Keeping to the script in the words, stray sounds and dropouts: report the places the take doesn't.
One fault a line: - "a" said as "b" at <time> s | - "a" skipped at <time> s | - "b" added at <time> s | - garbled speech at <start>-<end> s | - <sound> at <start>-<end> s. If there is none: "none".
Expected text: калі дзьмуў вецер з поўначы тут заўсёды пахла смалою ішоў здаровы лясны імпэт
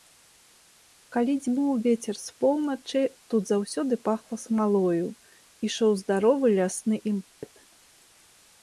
- dropout at 7.3-7.4 s